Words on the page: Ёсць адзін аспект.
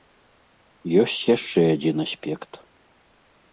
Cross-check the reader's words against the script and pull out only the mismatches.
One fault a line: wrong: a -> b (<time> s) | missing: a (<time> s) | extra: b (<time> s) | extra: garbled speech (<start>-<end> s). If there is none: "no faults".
extra: яшчэ (1.4 s)